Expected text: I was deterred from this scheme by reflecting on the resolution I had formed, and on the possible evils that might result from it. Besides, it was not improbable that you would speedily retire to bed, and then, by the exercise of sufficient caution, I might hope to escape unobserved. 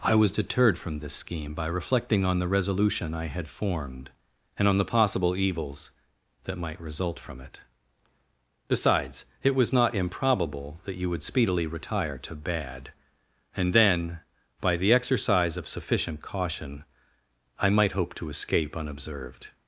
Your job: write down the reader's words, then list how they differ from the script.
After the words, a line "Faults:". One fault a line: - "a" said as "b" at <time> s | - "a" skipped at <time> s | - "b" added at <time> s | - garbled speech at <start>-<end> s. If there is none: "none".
I was deterred from this scheme by reflecting on the resolution I had formed, and on the possible evils that might result from it. Besides, it was not improbable that you would speedily retire to bad, and then, by the exercise of sufficient caution, I might hope to escape unobserved.
Faults:
- "bed" said as "bad" at 12.3 s